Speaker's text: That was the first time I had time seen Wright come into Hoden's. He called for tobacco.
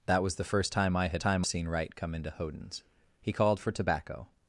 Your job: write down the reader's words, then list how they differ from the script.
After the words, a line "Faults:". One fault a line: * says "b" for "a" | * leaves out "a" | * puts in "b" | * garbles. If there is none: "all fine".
That was the first time I had time seen Wright come into Hoden's. He called for tobacco.
Faults:
all fine